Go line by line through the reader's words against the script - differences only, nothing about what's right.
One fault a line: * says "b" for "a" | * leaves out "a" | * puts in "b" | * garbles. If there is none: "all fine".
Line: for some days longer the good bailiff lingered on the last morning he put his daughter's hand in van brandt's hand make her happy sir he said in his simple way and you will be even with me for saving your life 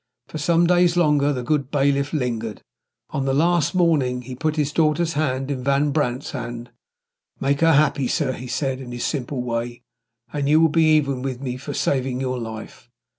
all fine